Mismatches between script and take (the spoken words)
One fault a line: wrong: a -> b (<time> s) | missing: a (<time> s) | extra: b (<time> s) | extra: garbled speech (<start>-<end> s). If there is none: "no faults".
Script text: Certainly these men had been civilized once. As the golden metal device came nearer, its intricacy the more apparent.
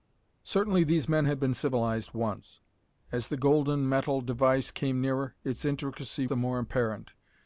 no faults